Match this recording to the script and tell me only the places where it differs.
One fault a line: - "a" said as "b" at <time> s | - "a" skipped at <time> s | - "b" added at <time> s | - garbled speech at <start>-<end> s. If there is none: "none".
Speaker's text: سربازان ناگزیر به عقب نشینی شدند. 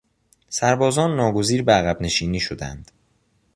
none